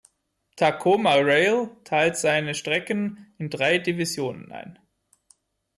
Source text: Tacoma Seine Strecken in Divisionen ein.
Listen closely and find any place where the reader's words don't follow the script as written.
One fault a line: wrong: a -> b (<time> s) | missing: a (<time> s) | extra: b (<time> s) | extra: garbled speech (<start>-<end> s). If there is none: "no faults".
extra: Rail teilt (1.1 s)
extra: drei (3.5 s)